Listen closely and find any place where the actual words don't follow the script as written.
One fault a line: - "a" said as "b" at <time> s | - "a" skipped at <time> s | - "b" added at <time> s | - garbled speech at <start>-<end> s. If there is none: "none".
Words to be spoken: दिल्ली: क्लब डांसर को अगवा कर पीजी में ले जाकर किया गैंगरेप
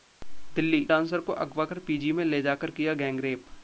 - "क्लब" skipped at 0.8 s